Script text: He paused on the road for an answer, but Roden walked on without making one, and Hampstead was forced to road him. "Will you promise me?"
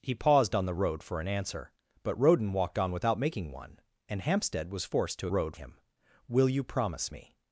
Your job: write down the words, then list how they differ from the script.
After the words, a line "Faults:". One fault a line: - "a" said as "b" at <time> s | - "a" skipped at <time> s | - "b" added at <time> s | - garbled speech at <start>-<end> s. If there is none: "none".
He paused on the road for an answer, but Roden walked on without making one, and Hampstead was forced to road him. "Will you promise me?"
Faults:
none